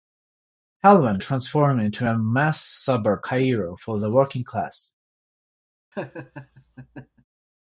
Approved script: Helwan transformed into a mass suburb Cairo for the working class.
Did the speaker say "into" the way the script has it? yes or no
yes